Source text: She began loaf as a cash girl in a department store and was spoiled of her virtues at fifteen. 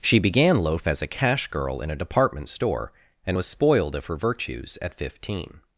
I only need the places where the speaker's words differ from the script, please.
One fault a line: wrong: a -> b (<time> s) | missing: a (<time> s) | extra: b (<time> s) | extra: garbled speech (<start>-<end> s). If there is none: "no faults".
no faults